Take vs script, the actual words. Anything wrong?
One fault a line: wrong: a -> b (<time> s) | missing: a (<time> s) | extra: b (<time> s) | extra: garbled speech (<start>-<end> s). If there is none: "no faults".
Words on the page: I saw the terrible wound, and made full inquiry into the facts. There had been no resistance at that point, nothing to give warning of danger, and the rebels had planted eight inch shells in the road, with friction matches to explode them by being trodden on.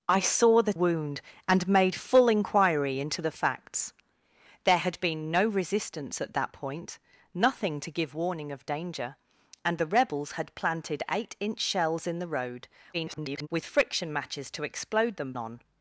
missing: terrible (0.7 s)
extra: garbled speech (12.9-13.5 s)
missing: by being trodden (15.3 s)